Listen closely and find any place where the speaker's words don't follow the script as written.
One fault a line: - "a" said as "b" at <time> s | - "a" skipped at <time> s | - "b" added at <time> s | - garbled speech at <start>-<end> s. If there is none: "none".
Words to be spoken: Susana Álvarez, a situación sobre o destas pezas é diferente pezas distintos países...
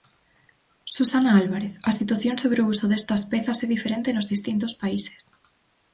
- "uso" added at 2.7 s
- "pezas" said as "nos" at 4.2 s